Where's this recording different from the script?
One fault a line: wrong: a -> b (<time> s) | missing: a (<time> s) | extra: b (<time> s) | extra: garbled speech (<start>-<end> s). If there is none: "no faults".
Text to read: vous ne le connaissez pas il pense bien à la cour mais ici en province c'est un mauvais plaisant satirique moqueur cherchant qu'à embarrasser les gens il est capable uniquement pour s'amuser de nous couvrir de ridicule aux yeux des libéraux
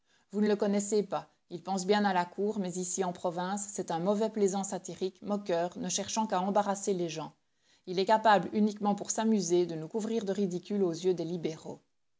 extra: ne (5.8 s)